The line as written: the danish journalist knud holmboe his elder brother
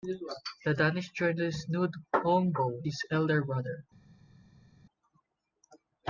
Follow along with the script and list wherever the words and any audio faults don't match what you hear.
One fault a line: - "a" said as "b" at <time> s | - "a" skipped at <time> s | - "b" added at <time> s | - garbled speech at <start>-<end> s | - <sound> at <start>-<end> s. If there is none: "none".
none